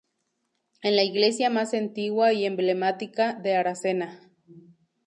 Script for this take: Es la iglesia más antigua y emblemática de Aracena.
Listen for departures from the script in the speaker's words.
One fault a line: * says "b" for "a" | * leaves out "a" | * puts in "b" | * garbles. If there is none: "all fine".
all fine